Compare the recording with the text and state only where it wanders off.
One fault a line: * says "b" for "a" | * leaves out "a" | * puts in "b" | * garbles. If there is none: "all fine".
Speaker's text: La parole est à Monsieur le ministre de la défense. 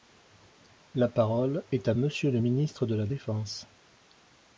all fine